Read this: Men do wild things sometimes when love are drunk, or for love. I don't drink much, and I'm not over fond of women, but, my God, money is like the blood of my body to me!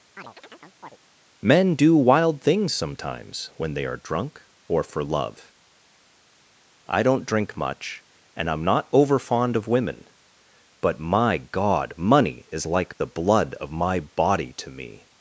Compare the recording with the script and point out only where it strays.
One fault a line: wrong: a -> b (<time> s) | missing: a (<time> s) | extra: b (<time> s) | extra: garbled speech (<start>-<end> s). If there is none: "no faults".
wrong: love -> they (3.7 s)